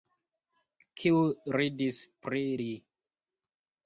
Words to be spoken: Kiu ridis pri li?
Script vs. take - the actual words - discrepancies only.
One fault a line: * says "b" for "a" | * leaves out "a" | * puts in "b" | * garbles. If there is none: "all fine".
all fine